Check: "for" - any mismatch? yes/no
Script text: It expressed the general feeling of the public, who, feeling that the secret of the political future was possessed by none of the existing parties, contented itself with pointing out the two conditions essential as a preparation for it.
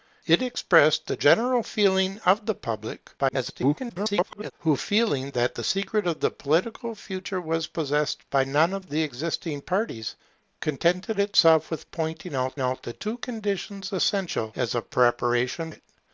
yes